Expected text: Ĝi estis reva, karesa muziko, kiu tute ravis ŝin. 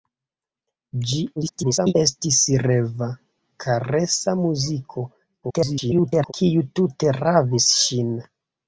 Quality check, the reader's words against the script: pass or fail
fail